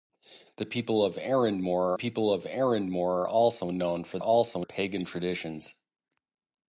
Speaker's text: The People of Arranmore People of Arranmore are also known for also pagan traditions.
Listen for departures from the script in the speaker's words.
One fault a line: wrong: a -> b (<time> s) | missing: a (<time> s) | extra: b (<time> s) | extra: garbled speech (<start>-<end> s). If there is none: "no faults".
no faults